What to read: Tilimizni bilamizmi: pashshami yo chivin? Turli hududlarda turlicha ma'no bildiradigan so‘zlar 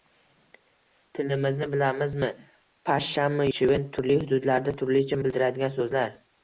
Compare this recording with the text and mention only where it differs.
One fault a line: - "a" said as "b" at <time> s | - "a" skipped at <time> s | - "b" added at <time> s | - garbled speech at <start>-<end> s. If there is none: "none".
- "yo" skipped at 3.5 s
- "ma'no" skipped at 5.2 s